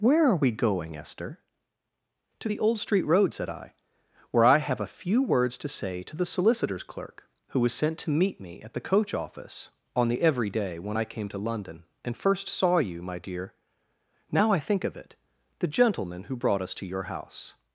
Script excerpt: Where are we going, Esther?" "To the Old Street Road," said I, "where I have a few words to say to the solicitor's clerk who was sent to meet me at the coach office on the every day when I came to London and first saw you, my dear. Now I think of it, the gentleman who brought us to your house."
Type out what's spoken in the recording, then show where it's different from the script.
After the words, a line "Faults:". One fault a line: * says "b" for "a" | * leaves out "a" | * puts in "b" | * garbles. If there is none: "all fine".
Where are we going, Esther?" "To the Old Street Road," said I, "where I have a few words to say to the solicitor's clerk who was sent to meet me at the coach office on the every day when I came to London and first saw you, my dear. Now I think of it, the gentleman who brought us to your house."
Faults:
all fine